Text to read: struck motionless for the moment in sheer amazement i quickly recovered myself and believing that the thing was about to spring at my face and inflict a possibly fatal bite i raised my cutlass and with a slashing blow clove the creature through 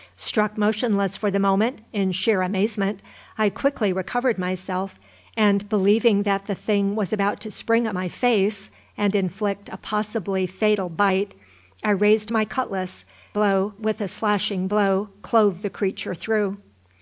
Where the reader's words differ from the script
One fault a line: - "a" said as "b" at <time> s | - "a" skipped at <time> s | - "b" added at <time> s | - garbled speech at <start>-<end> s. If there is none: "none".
- "and" said as "blow" at 13.3 s